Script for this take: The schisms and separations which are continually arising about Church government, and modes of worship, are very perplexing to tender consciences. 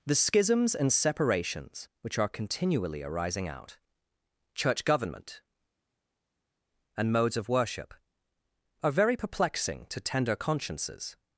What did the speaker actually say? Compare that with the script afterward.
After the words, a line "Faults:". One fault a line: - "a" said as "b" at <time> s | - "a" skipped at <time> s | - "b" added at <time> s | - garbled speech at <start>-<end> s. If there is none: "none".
The schisms and separations which are continually arising out Church government, and modes of worship, are very perplexing to tender consciences.
Faults:
- "about" said as "out" at 3.5 s